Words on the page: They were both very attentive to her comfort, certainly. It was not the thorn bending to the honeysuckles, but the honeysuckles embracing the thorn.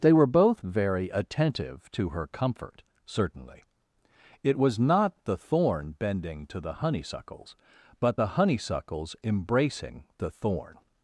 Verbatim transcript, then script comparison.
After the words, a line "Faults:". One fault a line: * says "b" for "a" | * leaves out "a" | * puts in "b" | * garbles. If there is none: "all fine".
They were both very attentive to her comfort, certainly. It was not the thorn bending to the honeysuckles, but the honeysuckles embracing the thorn.
Faults:
all fine